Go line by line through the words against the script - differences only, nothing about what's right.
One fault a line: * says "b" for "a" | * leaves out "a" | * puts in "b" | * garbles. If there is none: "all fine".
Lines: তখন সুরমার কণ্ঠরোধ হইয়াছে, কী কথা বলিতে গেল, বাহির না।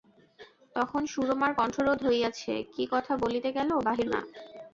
all fine